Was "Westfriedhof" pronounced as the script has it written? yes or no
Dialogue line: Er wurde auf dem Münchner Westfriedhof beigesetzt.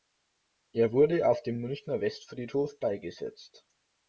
yes